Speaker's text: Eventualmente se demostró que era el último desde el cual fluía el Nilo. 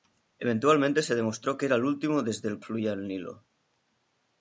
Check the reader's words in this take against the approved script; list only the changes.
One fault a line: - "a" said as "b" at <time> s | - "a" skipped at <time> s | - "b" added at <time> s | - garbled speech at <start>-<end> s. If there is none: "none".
- "cual" skipped at 2.6 s